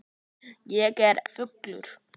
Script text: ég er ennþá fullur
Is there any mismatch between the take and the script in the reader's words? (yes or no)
yes